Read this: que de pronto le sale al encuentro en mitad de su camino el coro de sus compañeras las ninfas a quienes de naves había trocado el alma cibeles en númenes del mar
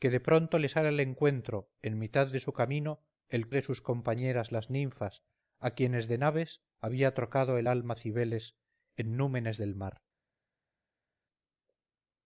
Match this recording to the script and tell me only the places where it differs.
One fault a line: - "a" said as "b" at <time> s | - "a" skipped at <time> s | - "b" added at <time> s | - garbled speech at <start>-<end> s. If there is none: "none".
- "coro" skipped at 3.5 s